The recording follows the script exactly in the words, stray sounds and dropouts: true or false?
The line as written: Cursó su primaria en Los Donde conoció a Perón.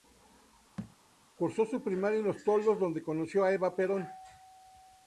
false